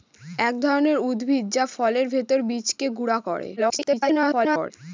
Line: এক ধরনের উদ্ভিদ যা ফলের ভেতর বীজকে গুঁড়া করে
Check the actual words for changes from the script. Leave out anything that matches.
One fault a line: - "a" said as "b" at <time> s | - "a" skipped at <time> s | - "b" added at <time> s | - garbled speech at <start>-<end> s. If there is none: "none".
- garbled speech at 3.6-4.7 s